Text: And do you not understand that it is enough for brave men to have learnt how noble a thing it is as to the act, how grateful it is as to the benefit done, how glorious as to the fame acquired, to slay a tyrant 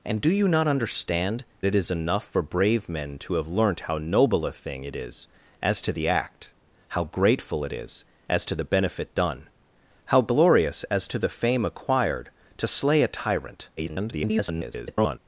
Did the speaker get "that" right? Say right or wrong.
wrong